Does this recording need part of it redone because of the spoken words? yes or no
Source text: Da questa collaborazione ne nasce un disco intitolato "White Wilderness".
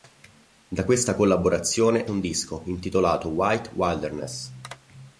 yes